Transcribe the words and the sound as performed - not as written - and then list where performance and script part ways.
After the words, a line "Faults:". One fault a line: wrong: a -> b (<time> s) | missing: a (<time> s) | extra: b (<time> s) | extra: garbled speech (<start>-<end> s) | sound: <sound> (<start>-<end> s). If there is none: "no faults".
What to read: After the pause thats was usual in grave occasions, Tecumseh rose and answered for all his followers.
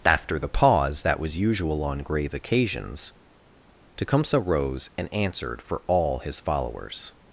After the pause that was usual on grave occasions, Tecumseh rose and answered for all his followers.
Faults:
wrong: thats -> that (1.0 s)
wrong: in -> on (1.8 s)